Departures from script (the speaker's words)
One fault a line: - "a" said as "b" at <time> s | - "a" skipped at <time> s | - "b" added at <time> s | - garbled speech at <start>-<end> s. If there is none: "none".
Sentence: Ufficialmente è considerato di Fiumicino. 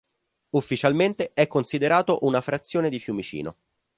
- "una frazione" added at 2.2 s